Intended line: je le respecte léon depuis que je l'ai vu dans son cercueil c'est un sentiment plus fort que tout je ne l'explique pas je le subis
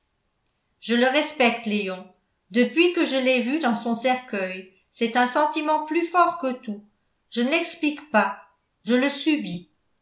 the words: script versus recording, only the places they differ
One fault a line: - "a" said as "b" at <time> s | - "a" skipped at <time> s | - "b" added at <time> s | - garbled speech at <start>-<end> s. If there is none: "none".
none